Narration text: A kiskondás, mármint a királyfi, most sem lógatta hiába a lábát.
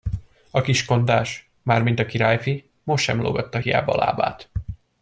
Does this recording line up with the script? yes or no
yes